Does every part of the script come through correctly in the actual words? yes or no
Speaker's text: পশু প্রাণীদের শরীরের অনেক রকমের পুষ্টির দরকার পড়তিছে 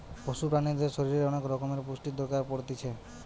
yes